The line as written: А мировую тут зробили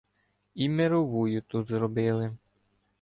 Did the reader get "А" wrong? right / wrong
wrong